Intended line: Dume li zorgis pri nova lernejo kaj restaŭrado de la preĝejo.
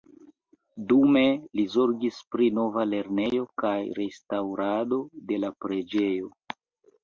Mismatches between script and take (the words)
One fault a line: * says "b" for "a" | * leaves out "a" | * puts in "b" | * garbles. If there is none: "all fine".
all fine